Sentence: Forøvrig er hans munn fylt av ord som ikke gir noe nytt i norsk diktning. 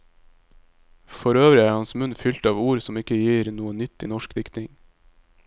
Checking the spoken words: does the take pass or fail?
pass